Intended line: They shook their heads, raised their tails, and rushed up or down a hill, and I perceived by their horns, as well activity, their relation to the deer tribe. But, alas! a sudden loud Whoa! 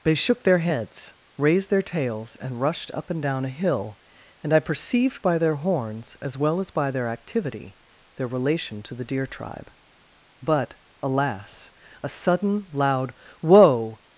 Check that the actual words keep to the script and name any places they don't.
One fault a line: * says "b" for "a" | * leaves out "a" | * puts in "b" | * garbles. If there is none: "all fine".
* says "and" for "or"
* puts in "as by their"